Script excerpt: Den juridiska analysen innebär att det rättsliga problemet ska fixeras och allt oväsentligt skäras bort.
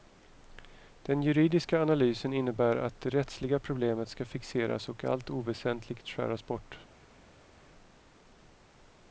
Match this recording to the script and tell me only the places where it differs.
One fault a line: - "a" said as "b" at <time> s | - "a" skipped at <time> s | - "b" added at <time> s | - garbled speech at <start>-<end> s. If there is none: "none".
none